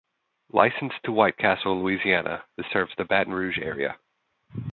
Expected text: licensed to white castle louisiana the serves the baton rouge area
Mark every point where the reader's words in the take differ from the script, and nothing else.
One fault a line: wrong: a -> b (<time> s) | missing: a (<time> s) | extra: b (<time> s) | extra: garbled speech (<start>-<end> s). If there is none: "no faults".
no faults